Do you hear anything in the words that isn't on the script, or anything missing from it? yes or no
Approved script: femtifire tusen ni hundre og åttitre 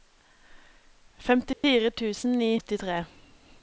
yes